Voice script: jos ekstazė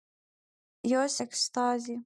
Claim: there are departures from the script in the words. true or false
false